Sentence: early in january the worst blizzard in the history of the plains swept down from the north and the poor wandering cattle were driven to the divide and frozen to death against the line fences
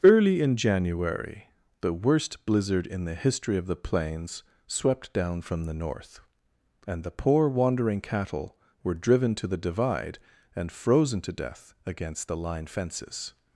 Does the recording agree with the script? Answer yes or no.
yes